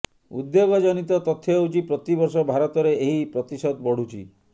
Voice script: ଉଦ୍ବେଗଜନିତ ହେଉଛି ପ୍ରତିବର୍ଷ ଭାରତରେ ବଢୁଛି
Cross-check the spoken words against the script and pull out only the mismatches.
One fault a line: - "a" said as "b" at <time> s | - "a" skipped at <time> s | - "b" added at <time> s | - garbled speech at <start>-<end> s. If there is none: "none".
- "ତଥ୍ୟ" added at 1.3 s
- "ଏହି ପ୍ରତିଶତ" added at 3.0 s